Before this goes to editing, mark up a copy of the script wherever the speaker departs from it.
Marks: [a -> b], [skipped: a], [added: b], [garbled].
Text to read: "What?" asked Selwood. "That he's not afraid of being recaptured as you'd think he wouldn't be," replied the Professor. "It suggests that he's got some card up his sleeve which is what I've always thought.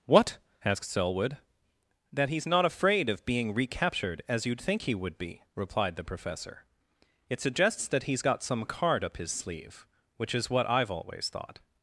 "What?" asked Selwood. "That he's not afraid of being recaptured as you'd think he [wouldn't -> would] be," replied the Professor. "It suggests that he's got some card up his sleeve which is what I've always thought.